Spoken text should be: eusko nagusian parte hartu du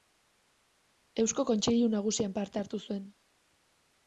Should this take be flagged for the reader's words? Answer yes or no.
yes